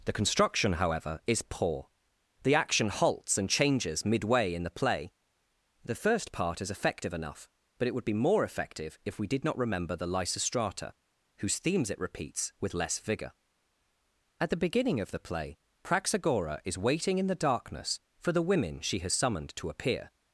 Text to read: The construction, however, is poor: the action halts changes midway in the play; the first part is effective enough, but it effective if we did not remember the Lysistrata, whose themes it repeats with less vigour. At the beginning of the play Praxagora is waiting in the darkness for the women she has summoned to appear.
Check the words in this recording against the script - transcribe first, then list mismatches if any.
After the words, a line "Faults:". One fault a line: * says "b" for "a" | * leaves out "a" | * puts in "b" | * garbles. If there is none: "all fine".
The construction, however, is poor: the action halts and changes midway in the play; the first part is effective enough, but it would be more effective if we did not remember the Lysistrata, whose themes it repeats with less vigour. At the beginning of the play Praxagora is waiting in the darkness for the women she has summoned to appear.
Faults:
* puts in "and"
* puts in "would be more"